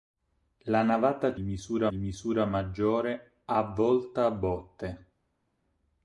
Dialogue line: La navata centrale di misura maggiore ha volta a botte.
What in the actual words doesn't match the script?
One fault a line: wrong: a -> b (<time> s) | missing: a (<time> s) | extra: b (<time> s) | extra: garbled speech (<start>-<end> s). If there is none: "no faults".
wrong: centrale -> misura (1.4 s)